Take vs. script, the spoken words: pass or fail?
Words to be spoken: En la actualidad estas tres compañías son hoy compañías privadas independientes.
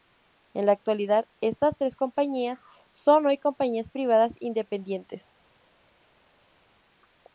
pass